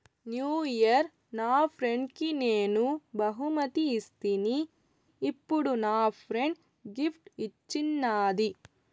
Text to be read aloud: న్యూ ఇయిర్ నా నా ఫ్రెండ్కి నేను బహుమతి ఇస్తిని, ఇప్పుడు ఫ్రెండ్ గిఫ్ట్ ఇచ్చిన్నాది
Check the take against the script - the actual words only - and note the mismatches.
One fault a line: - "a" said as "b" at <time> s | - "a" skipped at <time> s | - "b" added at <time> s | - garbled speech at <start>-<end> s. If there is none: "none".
- "నా" skipped at 1.7 s
- "నా" added at 5.8 s